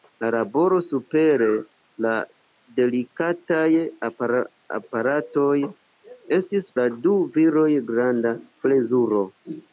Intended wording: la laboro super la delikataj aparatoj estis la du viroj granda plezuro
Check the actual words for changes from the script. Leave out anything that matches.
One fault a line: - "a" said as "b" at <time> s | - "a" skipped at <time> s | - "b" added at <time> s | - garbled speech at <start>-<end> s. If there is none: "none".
none